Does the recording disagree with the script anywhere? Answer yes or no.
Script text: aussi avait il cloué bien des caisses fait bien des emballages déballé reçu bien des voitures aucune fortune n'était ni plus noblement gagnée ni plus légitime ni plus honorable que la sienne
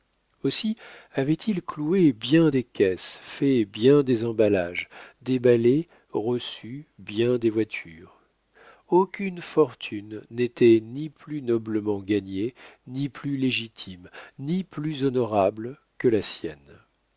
no